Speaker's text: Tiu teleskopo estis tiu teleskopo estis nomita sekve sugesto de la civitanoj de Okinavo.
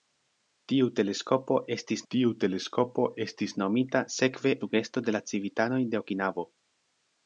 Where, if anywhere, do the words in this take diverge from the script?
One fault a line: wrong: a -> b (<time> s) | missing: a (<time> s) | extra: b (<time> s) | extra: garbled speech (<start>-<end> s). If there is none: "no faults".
no faults